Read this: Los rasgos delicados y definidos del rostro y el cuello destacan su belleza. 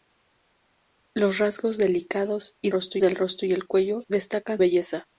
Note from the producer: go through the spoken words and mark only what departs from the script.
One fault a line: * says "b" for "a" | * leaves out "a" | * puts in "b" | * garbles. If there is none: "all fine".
* says "rostro" for "definidos"
* leaves out "su"